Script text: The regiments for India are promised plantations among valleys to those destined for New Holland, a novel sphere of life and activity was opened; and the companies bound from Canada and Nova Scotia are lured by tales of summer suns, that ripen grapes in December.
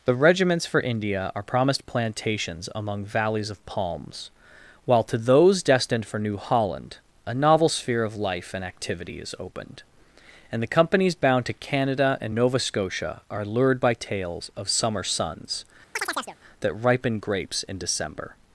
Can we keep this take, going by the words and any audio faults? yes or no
no